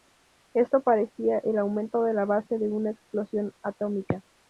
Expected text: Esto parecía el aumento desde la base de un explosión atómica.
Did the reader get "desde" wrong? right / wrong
wrong